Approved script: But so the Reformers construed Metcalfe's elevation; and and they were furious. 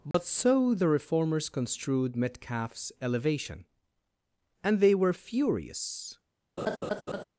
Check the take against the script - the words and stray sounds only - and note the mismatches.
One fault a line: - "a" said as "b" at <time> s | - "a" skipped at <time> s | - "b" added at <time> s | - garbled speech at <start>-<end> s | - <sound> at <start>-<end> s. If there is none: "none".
- dropout at 0.1-0.1 s
- "and" skipped at 4.8 s
- laugh at 6.6-7.2 s